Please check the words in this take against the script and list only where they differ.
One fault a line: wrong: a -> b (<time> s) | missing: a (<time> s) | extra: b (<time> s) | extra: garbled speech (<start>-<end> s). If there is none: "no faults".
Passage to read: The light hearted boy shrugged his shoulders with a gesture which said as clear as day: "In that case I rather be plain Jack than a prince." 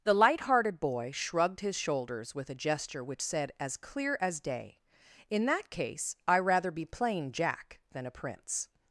no faults